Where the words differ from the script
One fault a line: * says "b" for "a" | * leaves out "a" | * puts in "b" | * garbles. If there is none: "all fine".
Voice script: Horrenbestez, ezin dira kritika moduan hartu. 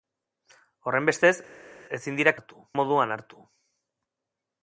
* says "hartu" for "kritika"